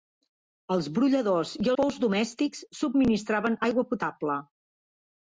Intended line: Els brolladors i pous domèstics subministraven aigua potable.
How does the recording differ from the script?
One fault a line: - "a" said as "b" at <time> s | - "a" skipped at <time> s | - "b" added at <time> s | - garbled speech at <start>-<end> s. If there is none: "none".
none